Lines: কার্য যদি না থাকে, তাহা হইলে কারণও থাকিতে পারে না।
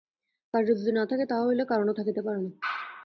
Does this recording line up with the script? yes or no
yes